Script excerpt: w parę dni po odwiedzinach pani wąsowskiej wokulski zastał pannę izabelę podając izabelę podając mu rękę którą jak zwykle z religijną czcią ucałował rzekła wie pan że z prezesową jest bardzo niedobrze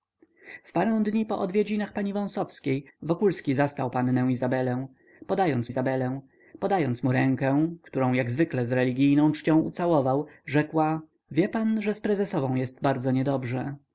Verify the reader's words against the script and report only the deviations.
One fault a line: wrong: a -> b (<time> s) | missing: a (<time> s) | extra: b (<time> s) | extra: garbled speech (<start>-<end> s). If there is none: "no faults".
no faults